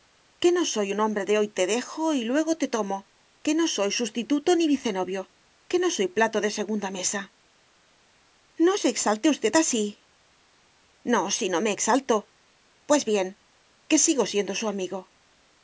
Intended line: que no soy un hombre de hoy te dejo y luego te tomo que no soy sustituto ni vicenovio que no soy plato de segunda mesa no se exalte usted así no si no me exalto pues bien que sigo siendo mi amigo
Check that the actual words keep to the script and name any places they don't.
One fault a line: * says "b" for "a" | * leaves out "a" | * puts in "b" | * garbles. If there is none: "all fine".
* says "su" for "mi"